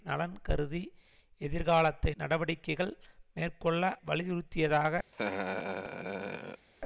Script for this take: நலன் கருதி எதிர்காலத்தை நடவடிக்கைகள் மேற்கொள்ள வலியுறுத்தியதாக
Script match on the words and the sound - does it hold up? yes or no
no